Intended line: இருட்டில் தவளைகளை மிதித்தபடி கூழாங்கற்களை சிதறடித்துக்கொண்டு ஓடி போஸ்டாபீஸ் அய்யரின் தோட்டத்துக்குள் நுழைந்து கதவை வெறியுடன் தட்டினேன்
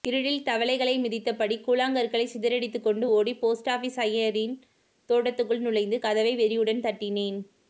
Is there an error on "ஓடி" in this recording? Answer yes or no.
no